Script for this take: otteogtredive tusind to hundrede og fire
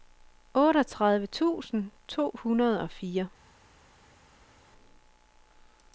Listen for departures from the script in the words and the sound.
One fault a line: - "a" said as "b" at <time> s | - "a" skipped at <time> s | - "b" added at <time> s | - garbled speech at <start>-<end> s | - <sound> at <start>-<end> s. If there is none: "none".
none